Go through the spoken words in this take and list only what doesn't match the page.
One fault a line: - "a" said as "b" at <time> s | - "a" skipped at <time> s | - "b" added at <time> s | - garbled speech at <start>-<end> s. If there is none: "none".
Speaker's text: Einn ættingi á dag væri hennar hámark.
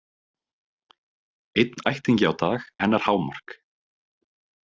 - "væri" skipped at 2.6 s